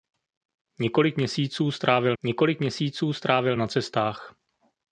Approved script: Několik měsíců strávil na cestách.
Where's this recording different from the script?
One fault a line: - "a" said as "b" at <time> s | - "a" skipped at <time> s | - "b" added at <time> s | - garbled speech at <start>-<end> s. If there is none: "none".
- "několik měsíců strávil" added at 2.2 s